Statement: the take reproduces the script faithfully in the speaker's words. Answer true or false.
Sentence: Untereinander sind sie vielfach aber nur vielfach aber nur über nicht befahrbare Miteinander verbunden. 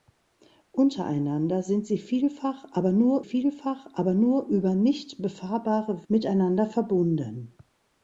true